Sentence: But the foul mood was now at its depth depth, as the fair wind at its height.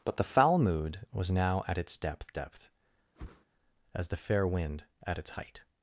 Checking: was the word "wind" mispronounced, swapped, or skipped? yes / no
no